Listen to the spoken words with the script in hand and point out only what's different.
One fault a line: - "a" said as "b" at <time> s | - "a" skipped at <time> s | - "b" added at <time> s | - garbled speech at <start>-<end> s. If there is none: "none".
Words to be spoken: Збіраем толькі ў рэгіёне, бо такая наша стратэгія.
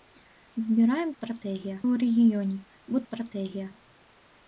- "толькі" said as "стратэгія" at 1.1 s
- "такая наша" skipped at 3.0 s